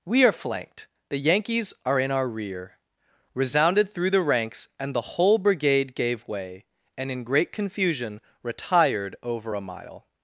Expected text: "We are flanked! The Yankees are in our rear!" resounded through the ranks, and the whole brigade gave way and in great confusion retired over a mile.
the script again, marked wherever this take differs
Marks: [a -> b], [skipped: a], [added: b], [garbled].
"We are flanked! The Yankees are in our rear!" resounded through the ranks, and the whole brigade gave way and in great confusion retired over a mile.